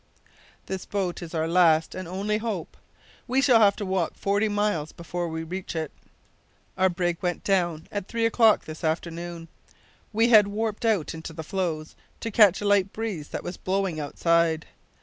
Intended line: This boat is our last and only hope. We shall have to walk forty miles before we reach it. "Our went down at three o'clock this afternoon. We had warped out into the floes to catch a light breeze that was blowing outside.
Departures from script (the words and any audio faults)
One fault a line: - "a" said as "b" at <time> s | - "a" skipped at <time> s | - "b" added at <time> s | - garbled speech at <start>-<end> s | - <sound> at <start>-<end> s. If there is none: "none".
- "brig" added at 6.9 s